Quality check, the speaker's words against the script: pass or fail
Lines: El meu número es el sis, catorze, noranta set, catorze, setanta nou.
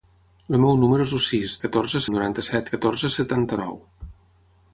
pass